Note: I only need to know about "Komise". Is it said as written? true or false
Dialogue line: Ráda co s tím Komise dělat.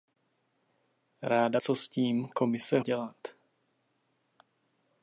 true